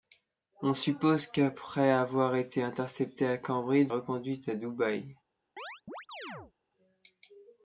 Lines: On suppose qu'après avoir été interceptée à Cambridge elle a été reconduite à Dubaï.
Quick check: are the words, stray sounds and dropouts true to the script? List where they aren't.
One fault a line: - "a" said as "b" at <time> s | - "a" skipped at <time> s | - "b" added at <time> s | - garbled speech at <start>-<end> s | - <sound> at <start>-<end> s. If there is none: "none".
- "elle a été" skipped at 3.9 s
- chirp at 5.6-6.5 s